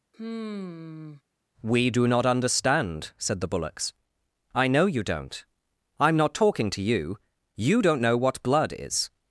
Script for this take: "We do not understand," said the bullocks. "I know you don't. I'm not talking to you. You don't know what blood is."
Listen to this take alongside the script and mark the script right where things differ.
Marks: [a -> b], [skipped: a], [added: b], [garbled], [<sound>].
[sigh] "We do not understand," said the bullocks. "I know you don't. I'm not talking to you. You don't know what blood is."